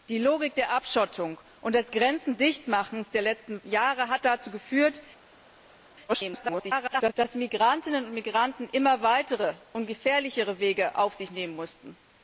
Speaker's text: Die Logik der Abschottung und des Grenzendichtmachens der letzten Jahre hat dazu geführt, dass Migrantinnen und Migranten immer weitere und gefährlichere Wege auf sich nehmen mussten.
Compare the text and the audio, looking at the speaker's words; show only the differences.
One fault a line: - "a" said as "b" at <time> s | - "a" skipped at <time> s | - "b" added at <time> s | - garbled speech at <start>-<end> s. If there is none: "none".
- garbled speech at 6.1-7.1 s